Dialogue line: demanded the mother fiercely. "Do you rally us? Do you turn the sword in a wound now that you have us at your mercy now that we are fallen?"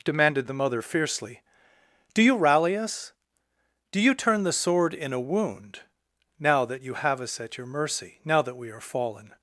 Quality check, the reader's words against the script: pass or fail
pass